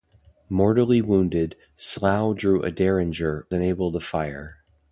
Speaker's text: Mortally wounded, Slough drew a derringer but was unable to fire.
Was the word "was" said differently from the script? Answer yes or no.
yes